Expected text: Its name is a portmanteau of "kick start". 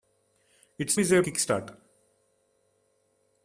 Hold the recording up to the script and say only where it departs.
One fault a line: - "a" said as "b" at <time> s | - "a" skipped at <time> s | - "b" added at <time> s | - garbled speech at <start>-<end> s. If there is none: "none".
- "name" skipped at 1.0 s
- "portmanteau of" skipped at 1.2 s